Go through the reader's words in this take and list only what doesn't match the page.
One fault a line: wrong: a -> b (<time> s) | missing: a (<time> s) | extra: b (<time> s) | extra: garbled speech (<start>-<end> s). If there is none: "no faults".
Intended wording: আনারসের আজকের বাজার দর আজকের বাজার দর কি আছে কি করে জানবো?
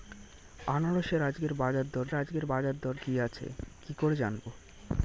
no faults